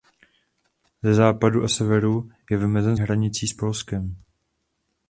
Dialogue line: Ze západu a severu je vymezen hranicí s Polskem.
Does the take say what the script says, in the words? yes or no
yes